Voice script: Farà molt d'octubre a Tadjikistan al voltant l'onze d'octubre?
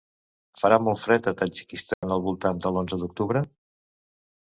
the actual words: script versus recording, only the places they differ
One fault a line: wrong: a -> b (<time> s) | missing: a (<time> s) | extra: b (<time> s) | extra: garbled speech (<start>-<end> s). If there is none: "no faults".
wrong: d'octubre -> fred (1.0 s)
extra: de (2.7 s)